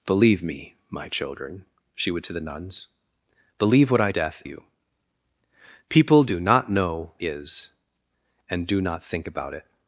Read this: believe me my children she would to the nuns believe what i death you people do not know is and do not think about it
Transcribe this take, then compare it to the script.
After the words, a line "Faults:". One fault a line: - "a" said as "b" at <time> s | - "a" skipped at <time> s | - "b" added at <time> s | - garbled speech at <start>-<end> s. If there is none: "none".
believe me my children she would to the nuns believe what i death you people do not know is and do not think about it
Faults:
none